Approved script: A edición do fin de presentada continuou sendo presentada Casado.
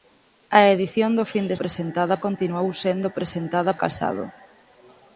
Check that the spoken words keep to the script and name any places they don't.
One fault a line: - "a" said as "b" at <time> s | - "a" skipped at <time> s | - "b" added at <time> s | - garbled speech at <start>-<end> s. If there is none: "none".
none